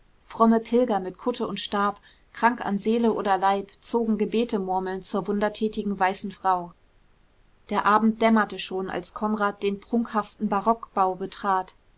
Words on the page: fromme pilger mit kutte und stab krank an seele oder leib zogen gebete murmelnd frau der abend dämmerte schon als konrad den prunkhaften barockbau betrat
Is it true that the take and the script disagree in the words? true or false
true